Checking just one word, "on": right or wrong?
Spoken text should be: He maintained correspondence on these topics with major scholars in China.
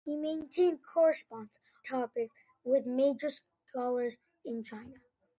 wrong